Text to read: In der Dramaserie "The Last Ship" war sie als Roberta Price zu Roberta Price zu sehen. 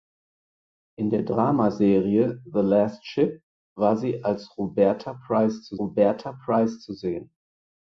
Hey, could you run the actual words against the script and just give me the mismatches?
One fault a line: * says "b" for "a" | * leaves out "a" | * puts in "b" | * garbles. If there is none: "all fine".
all fine